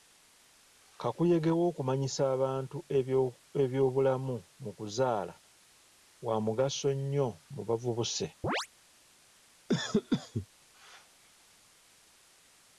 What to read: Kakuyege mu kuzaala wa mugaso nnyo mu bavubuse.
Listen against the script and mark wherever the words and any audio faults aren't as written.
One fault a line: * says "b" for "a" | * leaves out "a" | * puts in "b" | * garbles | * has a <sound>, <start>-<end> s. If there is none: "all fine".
* puts in "w'okumanyisa abantu ebyobulamu"
* has a chirp, 8.4-8.7 s
* has a cough, 9.7-10.5 s